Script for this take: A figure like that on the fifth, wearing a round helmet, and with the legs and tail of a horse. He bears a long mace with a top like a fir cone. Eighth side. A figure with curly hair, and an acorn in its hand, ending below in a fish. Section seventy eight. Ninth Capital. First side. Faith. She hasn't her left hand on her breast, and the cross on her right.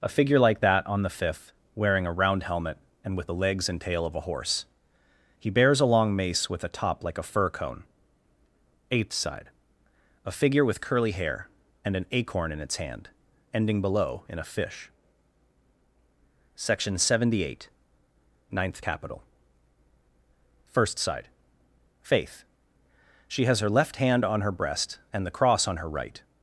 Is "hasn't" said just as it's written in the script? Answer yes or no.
no